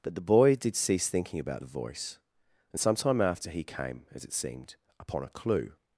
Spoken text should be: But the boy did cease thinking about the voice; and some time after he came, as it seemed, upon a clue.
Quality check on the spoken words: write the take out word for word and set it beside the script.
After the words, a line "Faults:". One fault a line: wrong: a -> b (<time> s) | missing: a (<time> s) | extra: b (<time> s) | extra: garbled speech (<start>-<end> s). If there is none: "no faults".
But the boy did cease thinking about the voice; and some time after he came, as it seemed, upon a clue.
Faults:
no faults